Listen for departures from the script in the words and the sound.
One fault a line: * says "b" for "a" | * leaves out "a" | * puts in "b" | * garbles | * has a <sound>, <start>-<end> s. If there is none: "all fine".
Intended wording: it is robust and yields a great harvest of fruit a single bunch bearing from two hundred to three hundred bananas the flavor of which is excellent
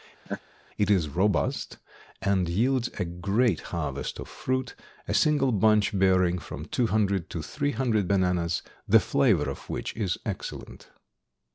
* has a laugh, 0.3-0.4 s